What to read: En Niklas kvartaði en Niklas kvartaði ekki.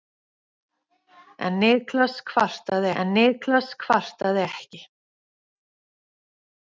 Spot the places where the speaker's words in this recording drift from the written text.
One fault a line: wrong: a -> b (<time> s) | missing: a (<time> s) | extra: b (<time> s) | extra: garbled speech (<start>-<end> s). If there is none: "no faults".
no faults